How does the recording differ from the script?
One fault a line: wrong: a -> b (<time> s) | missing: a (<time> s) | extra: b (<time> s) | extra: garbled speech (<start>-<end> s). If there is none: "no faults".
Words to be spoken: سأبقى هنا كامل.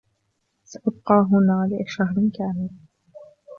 extra: لشهر (1.7 s)